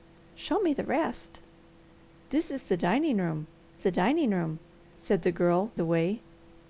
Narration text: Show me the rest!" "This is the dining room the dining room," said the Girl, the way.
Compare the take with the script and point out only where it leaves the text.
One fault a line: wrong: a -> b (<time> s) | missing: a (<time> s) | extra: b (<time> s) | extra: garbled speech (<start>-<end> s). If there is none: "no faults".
no faults